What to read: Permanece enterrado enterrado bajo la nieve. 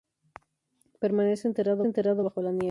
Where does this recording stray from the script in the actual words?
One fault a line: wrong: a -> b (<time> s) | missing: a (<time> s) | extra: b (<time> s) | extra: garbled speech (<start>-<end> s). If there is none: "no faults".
no faults